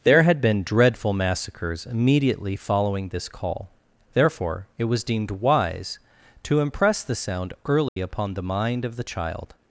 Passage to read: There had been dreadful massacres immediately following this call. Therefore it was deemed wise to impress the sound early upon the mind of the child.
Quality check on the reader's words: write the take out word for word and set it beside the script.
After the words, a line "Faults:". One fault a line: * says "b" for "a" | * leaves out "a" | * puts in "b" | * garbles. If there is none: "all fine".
There had been dreadful massacres immediately following this call. Therefore it was deemed wise to impress the sound early upon the mind of the child.
Faults:
all fine